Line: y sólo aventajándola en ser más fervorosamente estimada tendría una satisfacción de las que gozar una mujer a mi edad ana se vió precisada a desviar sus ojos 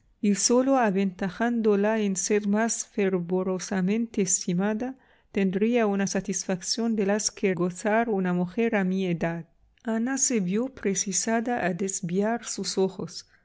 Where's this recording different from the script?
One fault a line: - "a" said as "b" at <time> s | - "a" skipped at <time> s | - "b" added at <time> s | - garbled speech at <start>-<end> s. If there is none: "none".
none